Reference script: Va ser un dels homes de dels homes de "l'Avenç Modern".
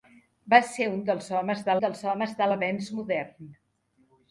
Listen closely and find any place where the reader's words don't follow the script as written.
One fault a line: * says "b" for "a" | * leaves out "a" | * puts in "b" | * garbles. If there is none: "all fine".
all fine